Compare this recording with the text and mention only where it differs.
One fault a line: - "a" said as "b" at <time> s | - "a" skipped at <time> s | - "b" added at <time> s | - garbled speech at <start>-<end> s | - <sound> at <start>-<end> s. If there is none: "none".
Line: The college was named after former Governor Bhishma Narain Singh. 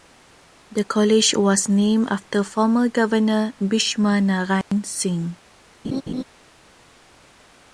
- dropout at 4.6-4.7 s
- laugh at 5.8-6.2 s